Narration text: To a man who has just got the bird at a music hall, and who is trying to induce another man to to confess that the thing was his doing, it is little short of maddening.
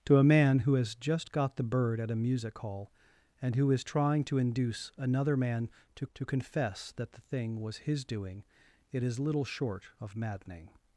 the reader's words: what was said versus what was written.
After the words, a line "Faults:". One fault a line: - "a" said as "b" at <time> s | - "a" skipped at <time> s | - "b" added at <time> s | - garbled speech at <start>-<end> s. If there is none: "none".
To a man who has just got the bird at a music hall, and who is trying to induce another man to to confess that the thing was his doing, it is little short of maddening.
Faults:
none